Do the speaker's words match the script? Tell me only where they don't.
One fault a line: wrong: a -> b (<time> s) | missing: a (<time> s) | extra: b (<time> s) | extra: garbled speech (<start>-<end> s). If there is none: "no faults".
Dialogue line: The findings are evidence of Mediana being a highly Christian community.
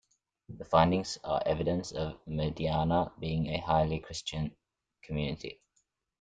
no faults